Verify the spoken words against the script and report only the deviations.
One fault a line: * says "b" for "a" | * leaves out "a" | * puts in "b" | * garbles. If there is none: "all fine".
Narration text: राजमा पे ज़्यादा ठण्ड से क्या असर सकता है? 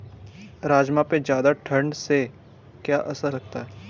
all fine